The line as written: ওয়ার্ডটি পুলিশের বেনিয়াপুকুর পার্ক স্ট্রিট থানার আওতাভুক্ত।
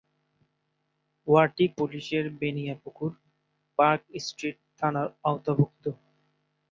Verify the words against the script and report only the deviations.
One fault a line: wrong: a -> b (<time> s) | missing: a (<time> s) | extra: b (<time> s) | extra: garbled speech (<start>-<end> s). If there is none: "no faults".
no faults